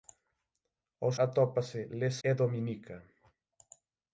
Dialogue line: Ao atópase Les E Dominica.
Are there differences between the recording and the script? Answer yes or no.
no